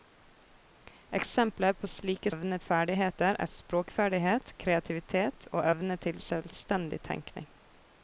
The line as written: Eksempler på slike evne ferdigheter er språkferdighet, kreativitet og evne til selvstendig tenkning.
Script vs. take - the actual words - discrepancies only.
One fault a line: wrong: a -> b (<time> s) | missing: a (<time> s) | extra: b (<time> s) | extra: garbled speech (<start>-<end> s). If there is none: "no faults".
no faults